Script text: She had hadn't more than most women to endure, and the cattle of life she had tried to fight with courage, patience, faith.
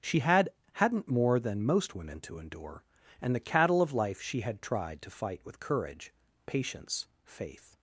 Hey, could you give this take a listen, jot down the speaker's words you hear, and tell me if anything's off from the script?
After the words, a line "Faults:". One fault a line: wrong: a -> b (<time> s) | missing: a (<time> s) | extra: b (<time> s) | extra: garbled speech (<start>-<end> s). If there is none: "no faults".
She had hadn't more than most women to endure, and the cattle of life she had tried to fight with courage, patience, faith.
Faults:
no faults